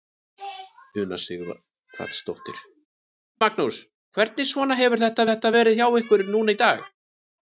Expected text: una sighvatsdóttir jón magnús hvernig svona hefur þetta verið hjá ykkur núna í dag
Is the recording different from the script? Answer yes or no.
yes